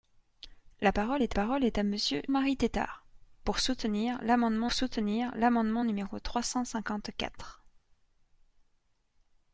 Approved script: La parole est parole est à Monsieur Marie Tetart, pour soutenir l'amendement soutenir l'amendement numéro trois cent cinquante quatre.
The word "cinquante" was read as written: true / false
true